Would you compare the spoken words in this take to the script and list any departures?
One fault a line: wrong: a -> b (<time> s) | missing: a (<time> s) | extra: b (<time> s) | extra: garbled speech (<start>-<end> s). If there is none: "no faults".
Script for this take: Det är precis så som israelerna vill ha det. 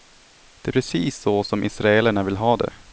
no faults